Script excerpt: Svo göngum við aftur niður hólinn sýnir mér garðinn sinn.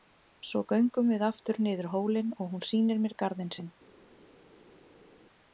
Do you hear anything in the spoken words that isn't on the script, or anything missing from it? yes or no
yes